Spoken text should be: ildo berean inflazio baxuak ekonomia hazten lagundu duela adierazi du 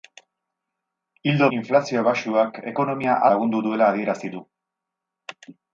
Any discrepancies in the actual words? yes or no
yes